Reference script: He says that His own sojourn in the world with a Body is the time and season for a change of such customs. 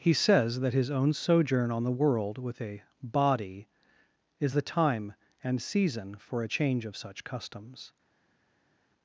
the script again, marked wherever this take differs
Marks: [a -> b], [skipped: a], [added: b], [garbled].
He says that His own sojourn [in -> on] the world with a Body is the time and season for a change of such customs.